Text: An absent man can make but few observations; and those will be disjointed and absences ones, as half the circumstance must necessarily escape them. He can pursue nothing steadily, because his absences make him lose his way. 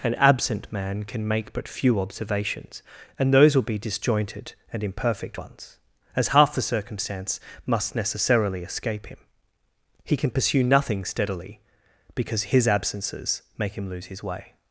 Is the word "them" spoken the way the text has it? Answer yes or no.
no